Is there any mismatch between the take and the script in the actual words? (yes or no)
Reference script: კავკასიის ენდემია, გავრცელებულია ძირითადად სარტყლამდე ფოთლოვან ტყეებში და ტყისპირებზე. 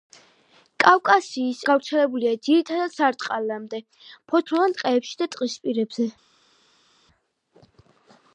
yes